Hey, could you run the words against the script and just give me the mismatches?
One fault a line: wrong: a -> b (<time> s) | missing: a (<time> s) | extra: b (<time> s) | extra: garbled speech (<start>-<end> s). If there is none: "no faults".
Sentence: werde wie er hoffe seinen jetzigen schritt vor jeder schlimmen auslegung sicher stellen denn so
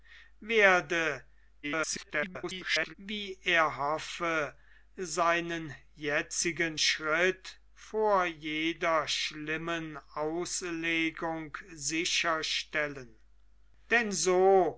extra: garbled speech (1.6-2.9 s)